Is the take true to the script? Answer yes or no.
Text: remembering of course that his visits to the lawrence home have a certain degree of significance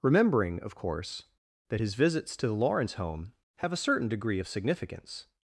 yes